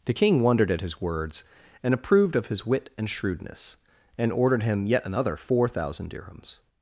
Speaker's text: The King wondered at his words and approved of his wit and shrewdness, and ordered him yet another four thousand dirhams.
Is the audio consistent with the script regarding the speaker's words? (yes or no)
yes